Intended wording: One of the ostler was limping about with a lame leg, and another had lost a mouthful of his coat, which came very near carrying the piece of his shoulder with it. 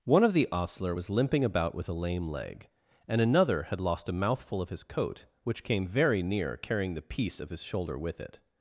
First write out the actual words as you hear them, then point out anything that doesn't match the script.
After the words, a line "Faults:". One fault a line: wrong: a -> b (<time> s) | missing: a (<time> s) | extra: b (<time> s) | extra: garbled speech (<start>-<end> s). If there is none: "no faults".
One of the ostler was limping about with a lame leg, and another had lost a mouthful of his coat, which came very near carrying the piece of his shoulder with it.
Faults:
no faults